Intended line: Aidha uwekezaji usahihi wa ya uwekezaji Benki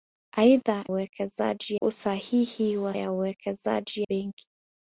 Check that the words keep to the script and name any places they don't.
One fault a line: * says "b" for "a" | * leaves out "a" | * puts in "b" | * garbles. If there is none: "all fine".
all fine